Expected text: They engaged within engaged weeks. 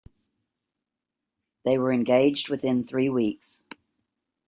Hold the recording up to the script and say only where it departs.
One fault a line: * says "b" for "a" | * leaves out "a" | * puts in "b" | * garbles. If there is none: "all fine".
* puts in "were"
* says "three" for "engaged"